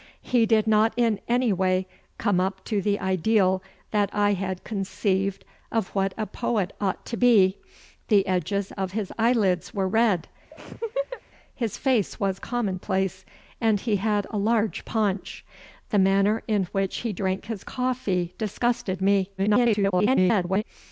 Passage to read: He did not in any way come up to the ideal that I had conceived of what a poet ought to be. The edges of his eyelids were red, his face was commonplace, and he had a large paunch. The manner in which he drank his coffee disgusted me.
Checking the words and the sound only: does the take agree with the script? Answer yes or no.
no